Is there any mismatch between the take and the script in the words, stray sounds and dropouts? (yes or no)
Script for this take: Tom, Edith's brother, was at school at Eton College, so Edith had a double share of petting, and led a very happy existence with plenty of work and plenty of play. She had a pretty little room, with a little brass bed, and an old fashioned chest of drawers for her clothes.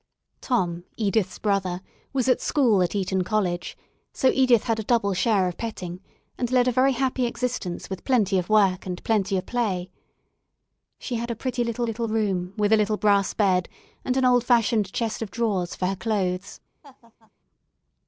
yes